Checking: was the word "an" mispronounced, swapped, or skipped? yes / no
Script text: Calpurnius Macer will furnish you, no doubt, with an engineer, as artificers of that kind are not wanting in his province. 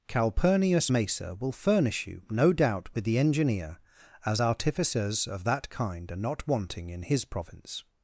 yes